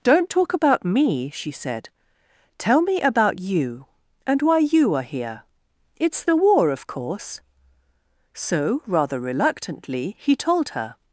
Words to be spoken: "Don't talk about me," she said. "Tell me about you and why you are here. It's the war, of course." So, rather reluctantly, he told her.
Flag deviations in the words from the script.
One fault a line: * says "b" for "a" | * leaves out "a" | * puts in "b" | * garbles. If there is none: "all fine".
all fine